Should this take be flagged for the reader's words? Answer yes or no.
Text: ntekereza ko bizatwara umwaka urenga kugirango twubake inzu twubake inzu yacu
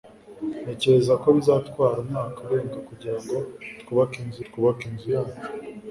no